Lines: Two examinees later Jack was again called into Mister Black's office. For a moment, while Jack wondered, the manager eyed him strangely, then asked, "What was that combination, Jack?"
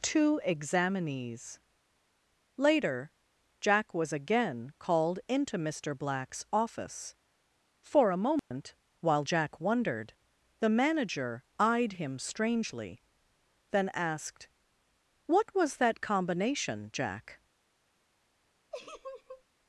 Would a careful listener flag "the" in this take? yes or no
no